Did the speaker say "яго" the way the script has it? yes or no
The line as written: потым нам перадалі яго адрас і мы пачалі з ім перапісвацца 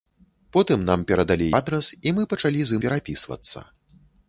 no